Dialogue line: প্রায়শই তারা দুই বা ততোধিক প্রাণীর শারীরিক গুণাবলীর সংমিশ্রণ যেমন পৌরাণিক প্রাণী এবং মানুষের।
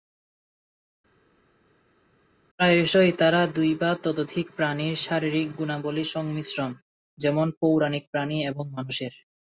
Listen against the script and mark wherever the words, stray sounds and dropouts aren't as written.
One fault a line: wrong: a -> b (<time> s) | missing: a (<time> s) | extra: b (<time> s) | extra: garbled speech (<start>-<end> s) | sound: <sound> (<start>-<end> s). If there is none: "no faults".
no faults